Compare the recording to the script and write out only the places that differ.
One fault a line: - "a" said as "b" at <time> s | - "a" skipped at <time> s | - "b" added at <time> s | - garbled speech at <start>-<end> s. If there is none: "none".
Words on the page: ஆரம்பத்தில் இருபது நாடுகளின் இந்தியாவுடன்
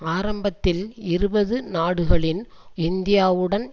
none